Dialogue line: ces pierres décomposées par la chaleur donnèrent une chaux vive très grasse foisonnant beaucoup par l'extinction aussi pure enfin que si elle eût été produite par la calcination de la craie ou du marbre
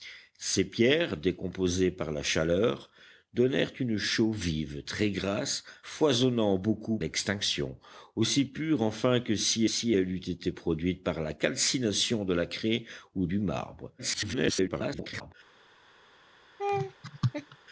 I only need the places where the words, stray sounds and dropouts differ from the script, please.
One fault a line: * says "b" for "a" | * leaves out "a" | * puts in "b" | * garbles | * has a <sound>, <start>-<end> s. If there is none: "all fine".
* leaves out "par"
* puts in "si"
* garbles
* has a laugh, 16.6-17.6 s